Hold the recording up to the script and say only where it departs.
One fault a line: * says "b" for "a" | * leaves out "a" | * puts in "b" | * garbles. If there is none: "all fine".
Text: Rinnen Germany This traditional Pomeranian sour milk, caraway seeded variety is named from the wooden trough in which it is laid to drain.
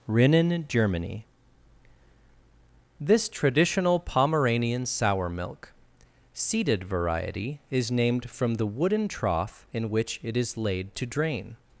* leaves out "caraway"